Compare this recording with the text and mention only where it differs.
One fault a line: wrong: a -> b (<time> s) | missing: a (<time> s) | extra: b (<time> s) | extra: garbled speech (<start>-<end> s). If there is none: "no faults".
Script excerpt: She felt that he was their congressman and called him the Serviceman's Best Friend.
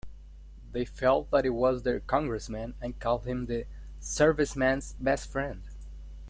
wrong: She -> They (0.7 s)